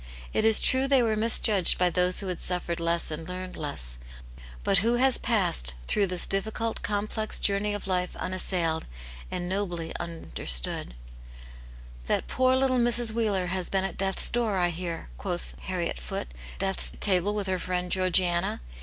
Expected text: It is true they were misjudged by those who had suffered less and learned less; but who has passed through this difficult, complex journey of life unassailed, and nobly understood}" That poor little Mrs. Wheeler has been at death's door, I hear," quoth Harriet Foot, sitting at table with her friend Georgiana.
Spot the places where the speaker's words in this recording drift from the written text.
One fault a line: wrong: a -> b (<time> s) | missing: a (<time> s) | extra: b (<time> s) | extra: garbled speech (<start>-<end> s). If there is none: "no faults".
wrong: sitting -> death's (16.6 s)